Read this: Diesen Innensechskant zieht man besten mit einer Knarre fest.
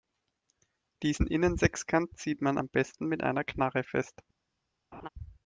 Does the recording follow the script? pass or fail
fail